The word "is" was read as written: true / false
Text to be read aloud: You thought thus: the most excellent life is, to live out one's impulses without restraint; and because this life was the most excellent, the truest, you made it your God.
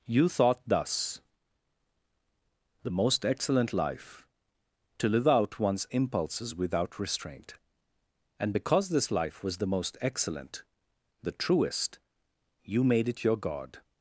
false